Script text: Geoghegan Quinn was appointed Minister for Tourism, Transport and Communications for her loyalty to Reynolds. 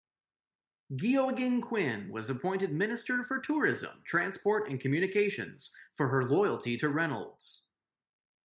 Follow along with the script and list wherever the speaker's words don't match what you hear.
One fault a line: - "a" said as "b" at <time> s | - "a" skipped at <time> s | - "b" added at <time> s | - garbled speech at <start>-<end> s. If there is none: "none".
none